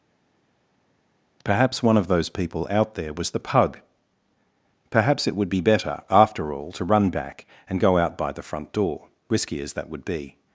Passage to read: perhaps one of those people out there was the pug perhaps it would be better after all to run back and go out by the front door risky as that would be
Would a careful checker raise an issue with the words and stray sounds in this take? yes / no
no